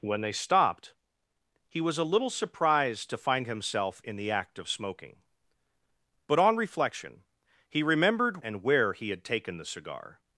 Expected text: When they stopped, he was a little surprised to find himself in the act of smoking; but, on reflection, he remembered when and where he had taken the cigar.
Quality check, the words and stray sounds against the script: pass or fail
fail